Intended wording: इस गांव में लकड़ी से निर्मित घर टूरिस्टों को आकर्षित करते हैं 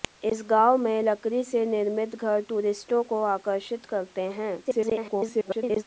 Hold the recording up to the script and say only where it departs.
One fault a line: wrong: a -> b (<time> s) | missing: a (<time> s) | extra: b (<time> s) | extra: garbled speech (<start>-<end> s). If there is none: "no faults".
extra: garbled speech (4.6-5.8 s)